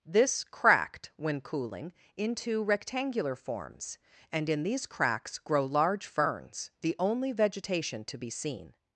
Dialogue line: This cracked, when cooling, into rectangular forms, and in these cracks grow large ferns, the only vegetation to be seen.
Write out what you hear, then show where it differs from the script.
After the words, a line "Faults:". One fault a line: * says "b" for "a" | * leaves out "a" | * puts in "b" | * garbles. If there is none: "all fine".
This cracked, when cooling, into rectangular forms, and in these cracks grow large ferns, the only vegetation to be seen.
Faults:
all fine